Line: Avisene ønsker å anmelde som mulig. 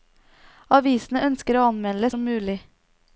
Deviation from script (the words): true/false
false